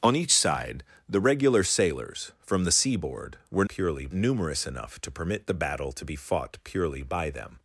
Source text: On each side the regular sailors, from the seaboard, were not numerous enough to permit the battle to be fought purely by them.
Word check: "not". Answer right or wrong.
wrong